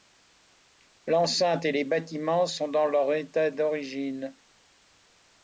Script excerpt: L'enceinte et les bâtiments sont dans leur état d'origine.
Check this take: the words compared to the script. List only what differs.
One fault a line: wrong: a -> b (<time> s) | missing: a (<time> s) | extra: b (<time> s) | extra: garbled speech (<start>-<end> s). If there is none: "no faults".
no faults